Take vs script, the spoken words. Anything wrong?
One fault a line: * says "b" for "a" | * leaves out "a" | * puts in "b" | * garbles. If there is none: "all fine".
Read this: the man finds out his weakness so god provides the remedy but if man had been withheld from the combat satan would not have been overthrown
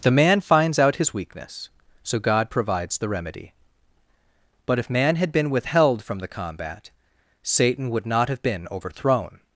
all fine